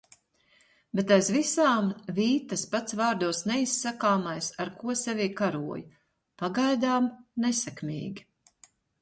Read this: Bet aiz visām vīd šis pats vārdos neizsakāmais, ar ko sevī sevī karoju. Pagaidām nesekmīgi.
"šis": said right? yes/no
no